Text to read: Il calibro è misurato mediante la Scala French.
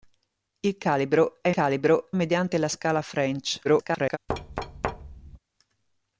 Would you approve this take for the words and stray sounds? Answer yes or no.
no